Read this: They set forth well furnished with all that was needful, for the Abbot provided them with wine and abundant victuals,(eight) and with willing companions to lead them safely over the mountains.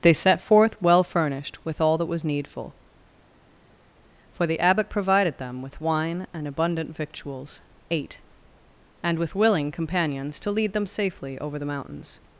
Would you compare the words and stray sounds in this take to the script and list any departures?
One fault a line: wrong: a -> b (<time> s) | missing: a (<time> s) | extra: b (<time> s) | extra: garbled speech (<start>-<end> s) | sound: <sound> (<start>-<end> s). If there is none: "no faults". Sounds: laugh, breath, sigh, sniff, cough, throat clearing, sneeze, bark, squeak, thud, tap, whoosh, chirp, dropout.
no faults